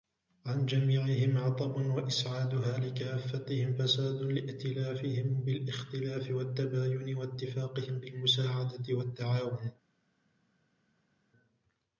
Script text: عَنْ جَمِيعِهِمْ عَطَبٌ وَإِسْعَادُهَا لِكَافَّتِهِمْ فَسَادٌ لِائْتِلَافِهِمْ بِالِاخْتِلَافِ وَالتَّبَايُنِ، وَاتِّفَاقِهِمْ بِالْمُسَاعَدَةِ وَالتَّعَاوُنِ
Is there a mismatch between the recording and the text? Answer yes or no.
no